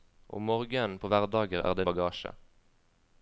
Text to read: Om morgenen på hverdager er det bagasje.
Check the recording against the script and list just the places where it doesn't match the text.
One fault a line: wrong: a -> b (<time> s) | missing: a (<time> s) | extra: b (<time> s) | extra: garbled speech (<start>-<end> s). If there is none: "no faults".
no faults